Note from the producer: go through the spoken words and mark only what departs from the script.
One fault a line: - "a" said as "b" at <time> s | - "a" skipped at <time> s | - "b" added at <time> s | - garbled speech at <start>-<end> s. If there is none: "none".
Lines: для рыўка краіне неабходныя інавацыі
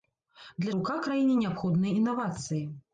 none